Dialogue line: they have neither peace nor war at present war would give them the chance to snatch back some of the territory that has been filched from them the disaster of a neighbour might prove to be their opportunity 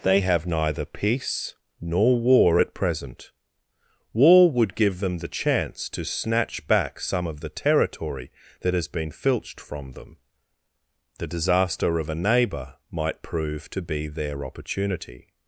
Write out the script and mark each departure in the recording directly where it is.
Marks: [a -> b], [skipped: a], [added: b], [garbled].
they have neither peace nor war at present war would give them the chance to snatch back some of the territory that has been filched from them the disaster of a neighbour might prove to be their opportunity